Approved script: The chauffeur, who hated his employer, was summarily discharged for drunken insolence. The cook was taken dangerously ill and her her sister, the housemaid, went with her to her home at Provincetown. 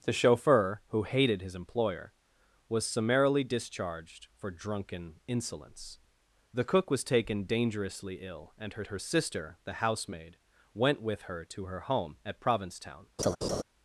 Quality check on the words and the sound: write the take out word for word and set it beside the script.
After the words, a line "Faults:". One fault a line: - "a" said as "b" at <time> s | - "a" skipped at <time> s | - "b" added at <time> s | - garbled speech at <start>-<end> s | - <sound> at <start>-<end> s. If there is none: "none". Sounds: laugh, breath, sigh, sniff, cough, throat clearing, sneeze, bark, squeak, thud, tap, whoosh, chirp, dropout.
The chauffeur, who hated his employer, was summarily discharged for drunken insolence. The cook was taken dangerously ill and her her sister, the housemaid, went with her to her home at Provincetown.
Faults:
- laugh at 13.2-13.6 s